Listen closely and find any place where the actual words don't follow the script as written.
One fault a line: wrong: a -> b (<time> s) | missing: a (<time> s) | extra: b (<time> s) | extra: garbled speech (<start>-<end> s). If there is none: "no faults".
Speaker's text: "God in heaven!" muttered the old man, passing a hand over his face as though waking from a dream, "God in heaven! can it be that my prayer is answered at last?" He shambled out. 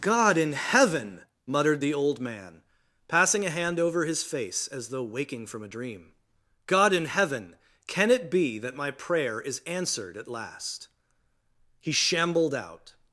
no faults